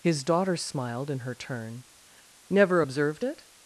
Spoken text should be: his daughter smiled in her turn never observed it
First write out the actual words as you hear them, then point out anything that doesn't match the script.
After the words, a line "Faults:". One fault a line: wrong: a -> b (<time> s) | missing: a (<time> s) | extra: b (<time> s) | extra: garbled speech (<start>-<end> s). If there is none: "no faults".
his daughter smiled in her turn never observed it
Faults:
no faults